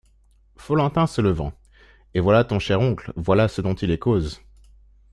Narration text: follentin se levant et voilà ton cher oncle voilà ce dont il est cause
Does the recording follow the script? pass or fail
pass